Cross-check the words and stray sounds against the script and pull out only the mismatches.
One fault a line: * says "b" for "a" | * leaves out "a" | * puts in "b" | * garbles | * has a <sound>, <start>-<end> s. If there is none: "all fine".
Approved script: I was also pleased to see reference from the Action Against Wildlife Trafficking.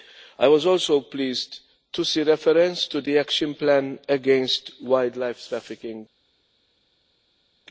* says "to" for "from"
* puts in "Plan"